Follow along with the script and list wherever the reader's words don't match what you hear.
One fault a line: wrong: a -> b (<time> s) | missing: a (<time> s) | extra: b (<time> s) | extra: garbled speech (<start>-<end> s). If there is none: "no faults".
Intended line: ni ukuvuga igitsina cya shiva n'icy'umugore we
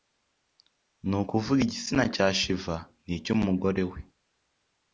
no faults